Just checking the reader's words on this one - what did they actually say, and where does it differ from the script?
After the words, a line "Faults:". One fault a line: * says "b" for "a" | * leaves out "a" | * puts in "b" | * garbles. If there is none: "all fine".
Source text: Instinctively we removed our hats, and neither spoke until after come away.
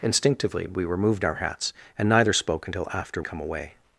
Instinctively we removed our hats, and neither spoke until after come away.
Faults:
all fine